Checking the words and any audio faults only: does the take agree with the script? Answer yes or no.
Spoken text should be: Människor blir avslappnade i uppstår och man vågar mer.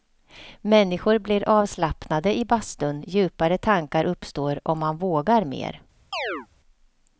no